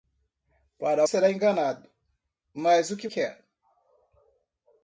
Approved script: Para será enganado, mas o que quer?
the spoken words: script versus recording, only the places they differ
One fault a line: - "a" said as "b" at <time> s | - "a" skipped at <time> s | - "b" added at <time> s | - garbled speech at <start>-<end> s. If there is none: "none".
none